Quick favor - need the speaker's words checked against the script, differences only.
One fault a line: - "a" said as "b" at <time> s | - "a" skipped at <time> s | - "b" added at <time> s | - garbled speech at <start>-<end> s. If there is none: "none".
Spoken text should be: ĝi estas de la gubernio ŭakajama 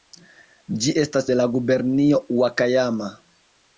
none